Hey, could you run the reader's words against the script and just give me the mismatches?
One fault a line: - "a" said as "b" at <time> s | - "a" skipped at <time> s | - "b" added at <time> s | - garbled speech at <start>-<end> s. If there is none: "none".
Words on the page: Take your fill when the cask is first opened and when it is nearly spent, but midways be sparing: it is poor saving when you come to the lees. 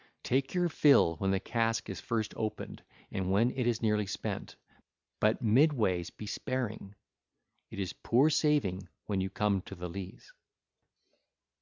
none